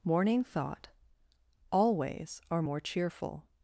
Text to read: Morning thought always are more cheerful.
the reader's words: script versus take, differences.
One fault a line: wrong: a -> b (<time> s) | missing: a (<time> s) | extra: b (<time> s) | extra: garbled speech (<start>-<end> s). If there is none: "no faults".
no faults